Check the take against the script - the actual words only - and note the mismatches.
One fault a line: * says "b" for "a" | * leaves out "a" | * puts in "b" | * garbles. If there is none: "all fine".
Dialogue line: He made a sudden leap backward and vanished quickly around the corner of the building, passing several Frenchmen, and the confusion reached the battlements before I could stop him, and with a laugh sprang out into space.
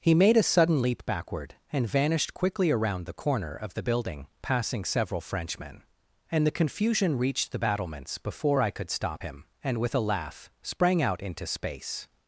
all fine